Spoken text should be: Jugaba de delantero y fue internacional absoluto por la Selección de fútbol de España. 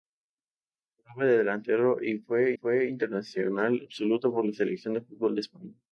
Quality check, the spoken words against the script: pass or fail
fail